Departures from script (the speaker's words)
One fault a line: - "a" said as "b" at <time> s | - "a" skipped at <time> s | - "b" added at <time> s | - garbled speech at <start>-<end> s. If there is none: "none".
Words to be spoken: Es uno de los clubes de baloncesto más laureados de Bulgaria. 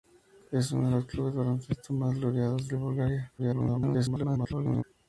- garbled speech at 3.4-4.8 s